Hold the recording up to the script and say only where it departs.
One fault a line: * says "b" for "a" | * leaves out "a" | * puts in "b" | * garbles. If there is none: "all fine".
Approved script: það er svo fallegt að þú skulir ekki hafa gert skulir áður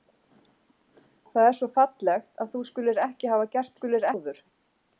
all fine